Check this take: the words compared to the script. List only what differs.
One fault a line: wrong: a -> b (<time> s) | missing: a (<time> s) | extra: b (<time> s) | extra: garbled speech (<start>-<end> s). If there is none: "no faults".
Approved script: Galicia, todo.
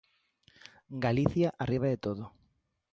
extra: arriba de (1.6 s)